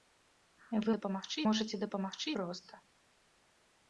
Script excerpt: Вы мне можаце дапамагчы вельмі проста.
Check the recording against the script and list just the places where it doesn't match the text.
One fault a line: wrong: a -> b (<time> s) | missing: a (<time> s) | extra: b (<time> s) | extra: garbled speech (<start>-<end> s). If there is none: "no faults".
wrong: мне -> дапамагчы (1.0 s)
missing: вельмі (2.3 s)